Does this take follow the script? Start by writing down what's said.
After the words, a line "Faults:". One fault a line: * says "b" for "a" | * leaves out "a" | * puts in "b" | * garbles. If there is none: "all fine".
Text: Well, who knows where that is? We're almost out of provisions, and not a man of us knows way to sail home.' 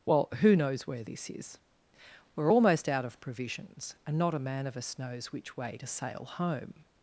Well, who knows where this is? We're almost out of provisions, and not a man of us knows which way to sail home.'
Faults:
* says "this" for "that"
* puts in "which"